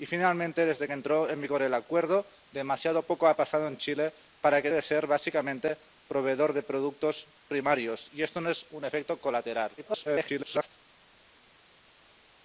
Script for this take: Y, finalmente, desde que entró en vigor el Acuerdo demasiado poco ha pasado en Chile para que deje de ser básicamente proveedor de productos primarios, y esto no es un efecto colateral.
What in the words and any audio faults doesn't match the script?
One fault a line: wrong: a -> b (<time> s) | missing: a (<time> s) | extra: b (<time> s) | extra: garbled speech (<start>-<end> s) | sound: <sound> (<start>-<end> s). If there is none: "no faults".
missing: deje (4.7 s)
extra: garbled speech (9.8-10.7 s)